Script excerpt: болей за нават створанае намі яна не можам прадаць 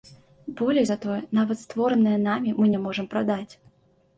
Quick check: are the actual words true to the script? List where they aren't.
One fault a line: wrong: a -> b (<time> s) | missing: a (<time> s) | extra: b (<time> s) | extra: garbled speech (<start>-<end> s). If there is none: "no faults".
extra: тое (1.0 s)
wrong: яна -> мы (2.6 s)